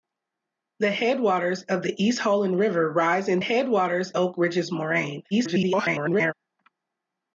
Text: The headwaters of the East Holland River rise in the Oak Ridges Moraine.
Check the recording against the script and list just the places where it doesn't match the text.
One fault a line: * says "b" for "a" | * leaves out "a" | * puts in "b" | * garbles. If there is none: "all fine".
* says "headwaters" for "the"
* garbles